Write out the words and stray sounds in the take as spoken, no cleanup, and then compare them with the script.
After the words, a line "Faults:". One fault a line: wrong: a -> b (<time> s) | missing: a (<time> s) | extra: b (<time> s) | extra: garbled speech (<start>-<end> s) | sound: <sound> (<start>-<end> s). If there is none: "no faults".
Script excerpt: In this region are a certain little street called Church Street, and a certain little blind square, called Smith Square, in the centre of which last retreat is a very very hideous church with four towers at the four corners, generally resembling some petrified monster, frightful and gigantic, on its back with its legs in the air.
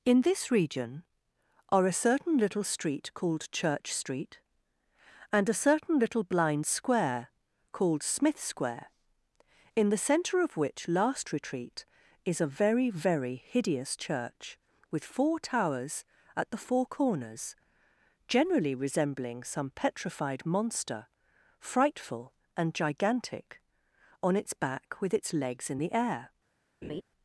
In this region are a certain little street called Church Street, and a certain little blind square, called Smith Square, in the centre of which last retreat is a very very hideous church with four towers at the four corners, generally resembling some petrified monster, frightful and gigantic, on its back with its legs in the air.
Faults:
sound: laugh (26.8-27.0 s)